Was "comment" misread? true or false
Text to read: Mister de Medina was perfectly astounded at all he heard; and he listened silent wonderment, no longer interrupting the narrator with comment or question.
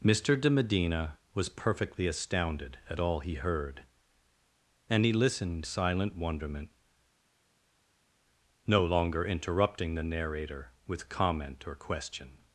false